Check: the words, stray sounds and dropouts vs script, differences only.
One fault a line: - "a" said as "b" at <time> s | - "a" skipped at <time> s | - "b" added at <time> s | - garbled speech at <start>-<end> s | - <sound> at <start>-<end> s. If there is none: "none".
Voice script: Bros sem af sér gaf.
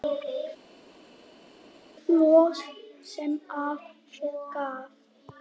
none